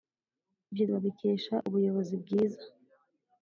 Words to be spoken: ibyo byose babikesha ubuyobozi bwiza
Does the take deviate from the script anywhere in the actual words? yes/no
yes